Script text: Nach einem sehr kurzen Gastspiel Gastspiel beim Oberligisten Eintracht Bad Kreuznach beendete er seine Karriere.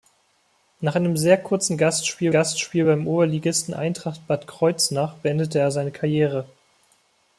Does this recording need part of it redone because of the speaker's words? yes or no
no